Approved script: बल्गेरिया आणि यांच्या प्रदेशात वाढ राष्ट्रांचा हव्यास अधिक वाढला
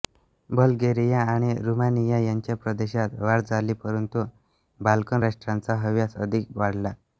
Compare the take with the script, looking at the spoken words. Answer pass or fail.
fail